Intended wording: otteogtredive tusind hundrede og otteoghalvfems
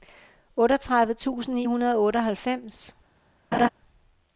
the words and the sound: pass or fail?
fail